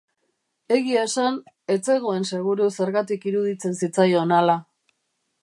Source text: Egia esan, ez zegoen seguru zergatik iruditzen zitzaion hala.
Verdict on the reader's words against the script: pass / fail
pass